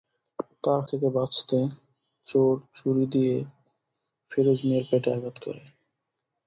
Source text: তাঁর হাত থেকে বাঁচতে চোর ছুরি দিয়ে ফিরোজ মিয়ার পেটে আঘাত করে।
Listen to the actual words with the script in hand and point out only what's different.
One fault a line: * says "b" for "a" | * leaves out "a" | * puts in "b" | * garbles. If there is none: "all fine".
* leaves out "হাত"